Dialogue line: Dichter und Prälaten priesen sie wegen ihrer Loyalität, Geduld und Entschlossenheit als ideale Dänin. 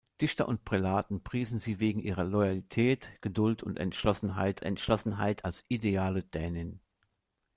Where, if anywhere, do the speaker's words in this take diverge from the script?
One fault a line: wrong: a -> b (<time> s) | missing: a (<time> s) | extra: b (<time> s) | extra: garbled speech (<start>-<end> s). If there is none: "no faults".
extra: Entschlossenheit (4.6 s)